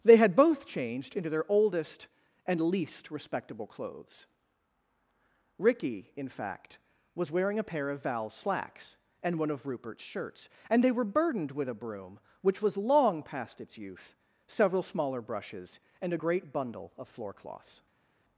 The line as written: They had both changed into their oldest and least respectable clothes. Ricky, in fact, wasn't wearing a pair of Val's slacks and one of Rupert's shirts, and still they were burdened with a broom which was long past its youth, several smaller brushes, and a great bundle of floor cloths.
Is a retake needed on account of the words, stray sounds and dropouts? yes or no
yes